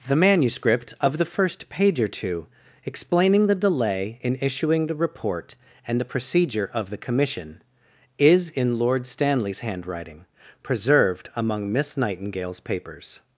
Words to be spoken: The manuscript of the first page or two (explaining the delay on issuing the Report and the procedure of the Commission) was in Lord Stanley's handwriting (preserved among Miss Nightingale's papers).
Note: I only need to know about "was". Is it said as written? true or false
false